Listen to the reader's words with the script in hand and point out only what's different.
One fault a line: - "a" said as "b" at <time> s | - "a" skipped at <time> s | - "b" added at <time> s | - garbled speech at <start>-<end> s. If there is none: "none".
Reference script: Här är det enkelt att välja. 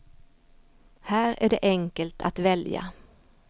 none